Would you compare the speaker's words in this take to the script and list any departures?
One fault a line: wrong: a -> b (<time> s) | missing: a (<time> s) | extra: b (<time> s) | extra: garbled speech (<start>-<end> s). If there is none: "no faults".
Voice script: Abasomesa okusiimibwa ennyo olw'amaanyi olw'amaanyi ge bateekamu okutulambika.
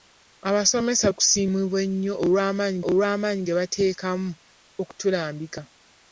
no faults